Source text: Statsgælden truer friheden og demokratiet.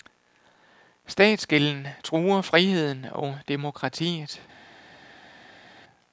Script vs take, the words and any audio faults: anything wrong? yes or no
no